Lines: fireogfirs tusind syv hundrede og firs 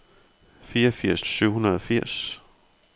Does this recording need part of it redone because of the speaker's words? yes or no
yes